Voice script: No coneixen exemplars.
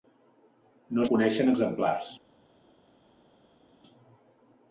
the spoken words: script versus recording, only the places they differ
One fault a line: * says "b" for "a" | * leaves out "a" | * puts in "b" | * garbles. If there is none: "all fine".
all fine